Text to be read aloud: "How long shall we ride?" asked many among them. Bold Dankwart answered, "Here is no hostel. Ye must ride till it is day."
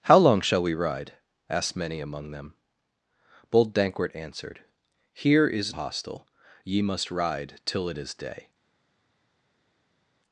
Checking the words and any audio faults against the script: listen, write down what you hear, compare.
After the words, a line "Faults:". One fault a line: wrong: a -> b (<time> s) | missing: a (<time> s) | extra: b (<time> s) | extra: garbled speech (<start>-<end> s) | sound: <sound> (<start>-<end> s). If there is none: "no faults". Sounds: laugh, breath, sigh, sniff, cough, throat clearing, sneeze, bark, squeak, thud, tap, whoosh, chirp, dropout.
"How long shall we ride?" asked many among them. Bold Dankwart answered, "Here is hostel. Ye must ride till it is day."
Faults:
missing: no (5.8 s)